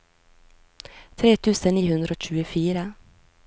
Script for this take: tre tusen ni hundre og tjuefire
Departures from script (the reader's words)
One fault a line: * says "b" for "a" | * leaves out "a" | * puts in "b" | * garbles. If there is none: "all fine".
all fine